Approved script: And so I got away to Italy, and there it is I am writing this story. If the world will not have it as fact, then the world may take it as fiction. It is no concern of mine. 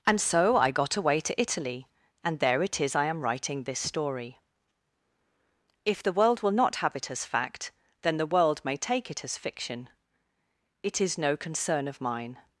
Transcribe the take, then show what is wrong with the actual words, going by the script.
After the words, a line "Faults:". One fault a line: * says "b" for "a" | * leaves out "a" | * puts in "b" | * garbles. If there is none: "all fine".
And so I got away to Italy, and there it is I am writing this story. If the world will not have it as fact, then the world may take it as fiction. It is no concern of mine.
Faults:
all fine